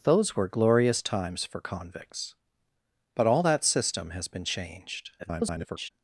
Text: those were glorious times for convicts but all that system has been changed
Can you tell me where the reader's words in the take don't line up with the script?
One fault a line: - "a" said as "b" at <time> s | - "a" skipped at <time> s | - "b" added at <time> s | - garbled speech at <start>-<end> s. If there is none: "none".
- garbled speech at 5.2-5.9 s